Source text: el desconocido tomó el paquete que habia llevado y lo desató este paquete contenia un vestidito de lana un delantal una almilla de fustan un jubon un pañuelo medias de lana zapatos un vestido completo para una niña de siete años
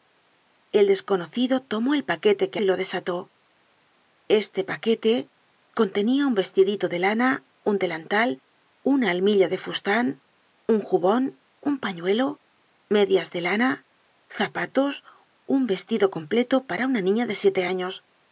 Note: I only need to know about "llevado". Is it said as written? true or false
false